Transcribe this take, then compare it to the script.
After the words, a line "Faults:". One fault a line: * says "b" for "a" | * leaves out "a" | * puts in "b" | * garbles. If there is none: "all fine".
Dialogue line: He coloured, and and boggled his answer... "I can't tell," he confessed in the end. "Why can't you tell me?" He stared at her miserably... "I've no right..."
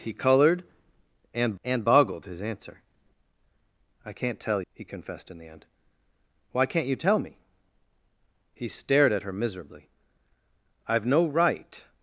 He coloured, and and boggled his answer... "I can't tell," he confessed in the end. "Why can't you tell me?" He stared at her miserably... "I've no right..."
Faults:
all fine